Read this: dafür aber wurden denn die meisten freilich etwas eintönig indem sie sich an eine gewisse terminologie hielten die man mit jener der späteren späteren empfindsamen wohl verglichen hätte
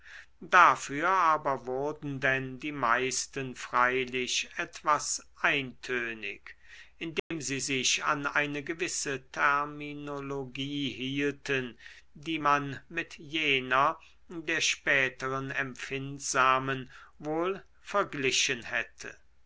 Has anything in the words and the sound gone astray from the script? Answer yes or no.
yes